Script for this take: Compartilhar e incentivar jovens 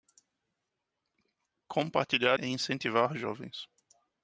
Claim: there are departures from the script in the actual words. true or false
false